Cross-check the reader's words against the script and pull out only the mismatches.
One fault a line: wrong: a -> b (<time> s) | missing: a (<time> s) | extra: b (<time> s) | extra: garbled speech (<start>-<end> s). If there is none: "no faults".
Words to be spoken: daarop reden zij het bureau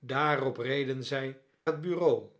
no faults